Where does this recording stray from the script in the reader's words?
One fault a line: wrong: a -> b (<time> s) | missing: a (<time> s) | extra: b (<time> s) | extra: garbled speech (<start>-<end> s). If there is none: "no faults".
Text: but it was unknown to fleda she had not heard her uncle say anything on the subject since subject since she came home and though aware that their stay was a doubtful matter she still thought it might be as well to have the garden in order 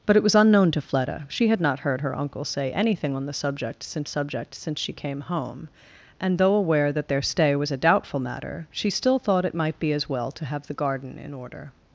no faults